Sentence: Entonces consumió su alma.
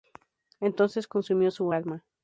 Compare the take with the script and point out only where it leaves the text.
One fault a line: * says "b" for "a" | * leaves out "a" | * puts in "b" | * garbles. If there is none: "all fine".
all fine